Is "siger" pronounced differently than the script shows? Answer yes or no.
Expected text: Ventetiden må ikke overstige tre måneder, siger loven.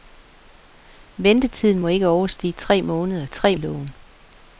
yes